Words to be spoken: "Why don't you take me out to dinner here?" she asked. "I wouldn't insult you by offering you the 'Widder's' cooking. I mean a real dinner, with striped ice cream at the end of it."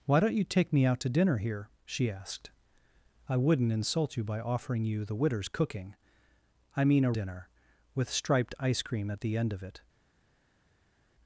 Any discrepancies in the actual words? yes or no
yes